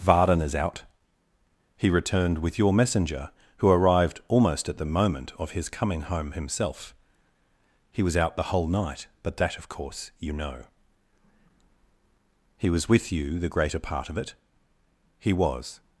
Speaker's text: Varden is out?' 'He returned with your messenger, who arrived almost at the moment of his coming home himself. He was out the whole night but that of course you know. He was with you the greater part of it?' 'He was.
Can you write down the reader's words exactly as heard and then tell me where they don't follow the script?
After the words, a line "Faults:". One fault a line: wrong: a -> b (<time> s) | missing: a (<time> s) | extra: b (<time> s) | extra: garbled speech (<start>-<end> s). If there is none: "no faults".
Varden is out?' 'He returned with your messenger, who arrived almost at the moment of his coming home himself. He was out the whole night but that of course you know. He was with you the greater part of it?' 'He was.
Faults:
no faults